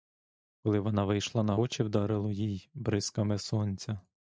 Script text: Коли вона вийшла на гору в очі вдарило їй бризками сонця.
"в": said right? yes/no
no